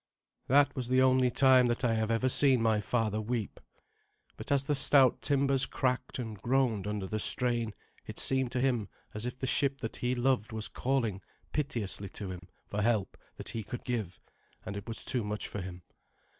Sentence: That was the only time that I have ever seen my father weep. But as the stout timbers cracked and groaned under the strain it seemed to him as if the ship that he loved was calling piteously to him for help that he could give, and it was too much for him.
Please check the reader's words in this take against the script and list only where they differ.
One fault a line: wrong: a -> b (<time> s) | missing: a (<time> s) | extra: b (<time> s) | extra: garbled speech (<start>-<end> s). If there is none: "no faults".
no faults